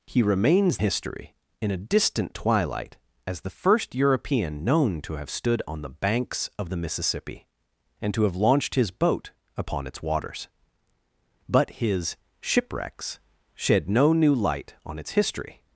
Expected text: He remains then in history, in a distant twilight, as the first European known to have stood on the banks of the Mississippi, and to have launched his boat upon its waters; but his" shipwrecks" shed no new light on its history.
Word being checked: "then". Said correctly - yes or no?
no